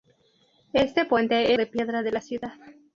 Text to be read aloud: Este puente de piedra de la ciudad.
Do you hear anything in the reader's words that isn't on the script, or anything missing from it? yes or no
no